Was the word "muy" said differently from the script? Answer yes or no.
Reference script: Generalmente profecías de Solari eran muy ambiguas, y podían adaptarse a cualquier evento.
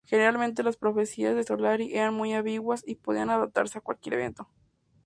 no